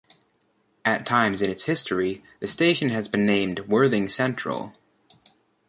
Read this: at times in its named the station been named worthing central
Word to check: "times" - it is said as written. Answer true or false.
true